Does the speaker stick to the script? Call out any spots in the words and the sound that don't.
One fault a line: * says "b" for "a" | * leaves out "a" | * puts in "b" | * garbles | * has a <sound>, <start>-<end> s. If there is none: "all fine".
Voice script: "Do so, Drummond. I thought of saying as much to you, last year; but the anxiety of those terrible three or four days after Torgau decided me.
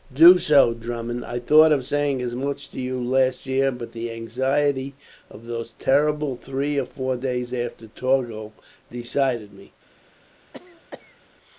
* has a cough, 10.5-11.2 s